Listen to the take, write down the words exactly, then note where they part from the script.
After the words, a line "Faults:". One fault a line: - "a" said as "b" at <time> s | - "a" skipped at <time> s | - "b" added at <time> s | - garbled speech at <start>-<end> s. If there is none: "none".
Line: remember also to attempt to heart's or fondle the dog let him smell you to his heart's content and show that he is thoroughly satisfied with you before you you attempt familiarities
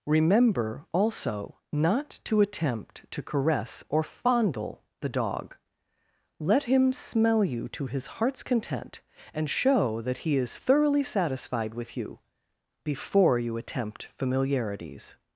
remember also not to attempt to caress or fondle the dog let him smell you to his heart's content and show that he is thoroughly satisfied with you before you attempt familiarities
Faults:
- "not" added at 1.7 s
- "heart's" said as "caress" at 3.2 s
- "you" skipped at 13.6 s